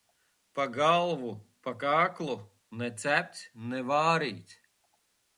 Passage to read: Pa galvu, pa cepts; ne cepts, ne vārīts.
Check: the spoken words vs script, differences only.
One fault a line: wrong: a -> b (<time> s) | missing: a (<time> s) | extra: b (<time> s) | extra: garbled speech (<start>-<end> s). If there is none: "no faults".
wrong: cepts -> kaklu (1.8 s)